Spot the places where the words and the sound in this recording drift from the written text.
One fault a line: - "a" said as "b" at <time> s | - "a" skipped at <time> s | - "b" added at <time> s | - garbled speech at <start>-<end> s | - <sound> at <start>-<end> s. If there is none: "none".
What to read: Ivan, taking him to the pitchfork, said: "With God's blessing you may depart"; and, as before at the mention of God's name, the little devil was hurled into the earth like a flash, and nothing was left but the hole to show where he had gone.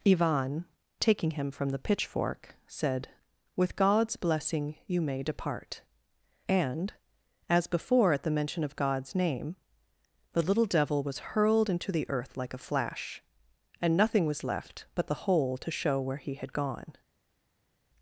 - "to" said as "from" at 1.5 s